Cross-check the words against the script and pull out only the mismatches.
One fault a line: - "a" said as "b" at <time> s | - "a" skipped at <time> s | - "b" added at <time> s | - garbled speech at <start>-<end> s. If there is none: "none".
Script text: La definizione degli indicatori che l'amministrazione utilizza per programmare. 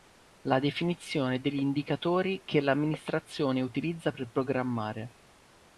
none